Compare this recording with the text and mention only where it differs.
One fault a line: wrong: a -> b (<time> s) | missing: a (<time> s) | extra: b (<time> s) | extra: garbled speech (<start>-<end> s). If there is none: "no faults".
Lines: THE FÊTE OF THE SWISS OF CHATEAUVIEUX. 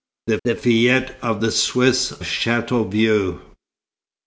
extra: the (0.4 s)
missing: OF (2.1 s)